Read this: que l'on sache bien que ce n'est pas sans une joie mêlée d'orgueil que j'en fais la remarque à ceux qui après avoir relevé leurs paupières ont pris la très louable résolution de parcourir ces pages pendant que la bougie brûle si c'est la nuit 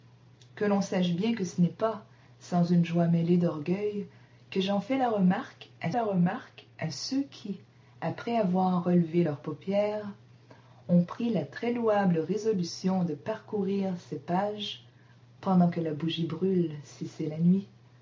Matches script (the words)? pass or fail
fail